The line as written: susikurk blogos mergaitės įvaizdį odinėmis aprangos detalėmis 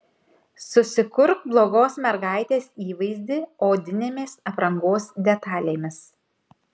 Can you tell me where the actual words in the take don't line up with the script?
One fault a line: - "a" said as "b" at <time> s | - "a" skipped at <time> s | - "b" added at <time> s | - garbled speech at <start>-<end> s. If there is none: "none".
none